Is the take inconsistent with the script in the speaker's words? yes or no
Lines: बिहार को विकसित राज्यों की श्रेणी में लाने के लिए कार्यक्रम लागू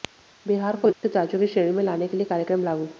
no